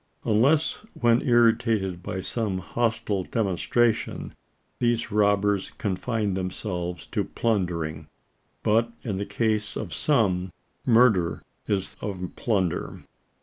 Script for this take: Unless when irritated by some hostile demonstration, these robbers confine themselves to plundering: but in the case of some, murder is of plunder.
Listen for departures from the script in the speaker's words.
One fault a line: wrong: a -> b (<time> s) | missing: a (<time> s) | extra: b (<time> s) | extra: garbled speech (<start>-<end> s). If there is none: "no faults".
no faults